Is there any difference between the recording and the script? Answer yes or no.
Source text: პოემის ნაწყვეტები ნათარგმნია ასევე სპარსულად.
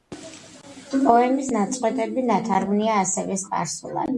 no